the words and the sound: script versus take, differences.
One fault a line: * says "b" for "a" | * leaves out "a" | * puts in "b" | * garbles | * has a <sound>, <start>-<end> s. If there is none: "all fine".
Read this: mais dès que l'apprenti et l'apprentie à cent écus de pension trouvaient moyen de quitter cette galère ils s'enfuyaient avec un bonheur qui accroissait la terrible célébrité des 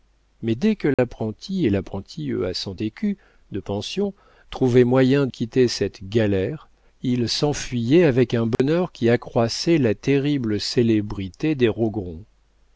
* has a dropout, 0.9-1.0 s
* leaves out "de"
* has a dropout, 8.5-8.6 s